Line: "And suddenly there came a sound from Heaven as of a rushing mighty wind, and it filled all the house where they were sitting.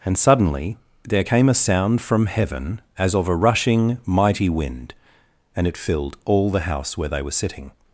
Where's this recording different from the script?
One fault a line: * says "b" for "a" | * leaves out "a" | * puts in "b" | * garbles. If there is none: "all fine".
all fine